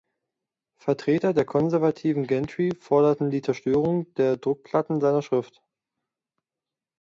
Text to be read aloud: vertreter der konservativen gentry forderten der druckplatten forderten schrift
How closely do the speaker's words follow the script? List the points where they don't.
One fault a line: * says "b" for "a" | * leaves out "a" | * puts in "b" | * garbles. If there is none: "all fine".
* puts in "die zerstörung"
* says "seiner" for "forderten"